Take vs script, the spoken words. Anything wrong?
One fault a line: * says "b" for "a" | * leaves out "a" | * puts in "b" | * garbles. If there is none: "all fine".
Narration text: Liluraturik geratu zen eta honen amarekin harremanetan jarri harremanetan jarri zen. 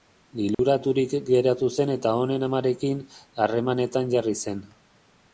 * leaves out "harremanetan jarri"